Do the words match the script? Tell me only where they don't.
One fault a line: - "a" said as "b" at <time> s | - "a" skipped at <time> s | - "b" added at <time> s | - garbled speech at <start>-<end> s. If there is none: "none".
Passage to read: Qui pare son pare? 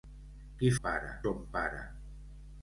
none